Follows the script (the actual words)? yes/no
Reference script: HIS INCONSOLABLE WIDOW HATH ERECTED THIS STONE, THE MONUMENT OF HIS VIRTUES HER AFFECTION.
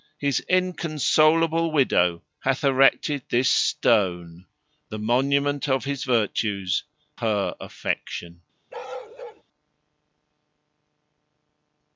yes